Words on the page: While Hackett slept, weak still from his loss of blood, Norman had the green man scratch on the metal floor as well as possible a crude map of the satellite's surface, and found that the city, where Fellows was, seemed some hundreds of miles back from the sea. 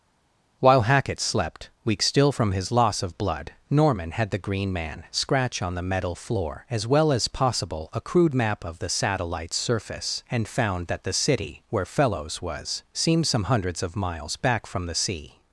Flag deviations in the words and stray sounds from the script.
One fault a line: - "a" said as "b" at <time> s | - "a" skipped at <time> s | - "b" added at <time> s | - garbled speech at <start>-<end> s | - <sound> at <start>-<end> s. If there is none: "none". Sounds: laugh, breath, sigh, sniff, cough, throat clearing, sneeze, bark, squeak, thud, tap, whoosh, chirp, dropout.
none